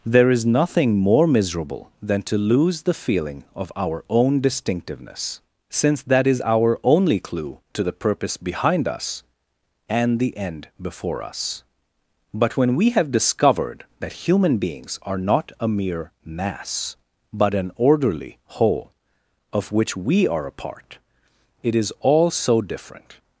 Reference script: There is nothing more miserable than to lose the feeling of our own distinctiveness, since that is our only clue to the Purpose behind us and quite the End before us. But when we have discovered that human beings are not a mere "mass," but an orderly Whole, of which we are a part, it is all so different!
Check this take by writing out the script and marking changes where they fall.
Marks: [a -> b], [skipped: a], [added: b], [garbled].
There is nothing more miserable than to lose the feeling of our own distinctiveness, since that is our only clue to the Purpose behind us and [skipped: quite] the End before us. But when we have discovered that human beings are not a mere "mass," but an orderly Whole, of which we are a part, it is all so different!